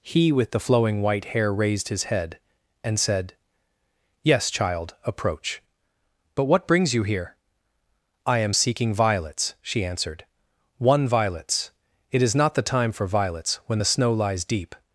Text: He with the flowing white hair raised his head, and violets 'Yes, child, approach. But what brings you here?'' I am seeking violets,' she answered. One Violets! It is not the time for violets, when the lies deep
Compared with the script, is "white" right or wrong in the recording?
right